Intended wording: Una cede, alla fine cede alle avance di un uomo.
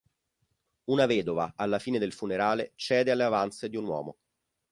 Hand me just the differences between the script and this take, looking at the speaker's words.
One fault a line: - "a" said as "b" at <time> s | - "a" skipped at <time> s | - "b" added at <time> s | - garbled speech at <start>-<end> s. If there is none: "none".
- "cede" said as "vedova" at 1.1 s
- "del funerale" added at 2.0 s